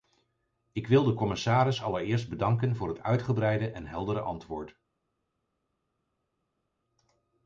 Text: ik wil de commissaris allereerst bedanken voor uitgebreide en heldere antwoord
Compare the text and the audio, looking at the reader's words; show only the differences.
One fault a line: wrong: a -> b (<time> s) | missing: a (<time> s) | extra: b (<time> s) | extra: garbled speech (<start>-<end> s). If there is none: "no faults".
extra: het (2.9 s)